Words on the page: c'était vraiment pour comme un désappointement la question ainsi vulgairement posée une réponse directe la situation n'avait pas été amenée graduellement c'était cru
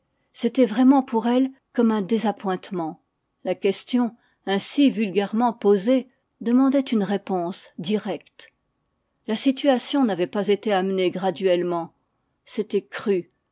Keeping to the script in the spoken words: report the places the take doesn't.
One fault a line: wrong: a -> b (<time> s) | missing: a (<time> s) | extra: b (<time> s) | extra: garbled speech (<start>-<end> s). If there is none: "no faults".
extra: elle (1.3 s)
extra: demandait (6.4 s)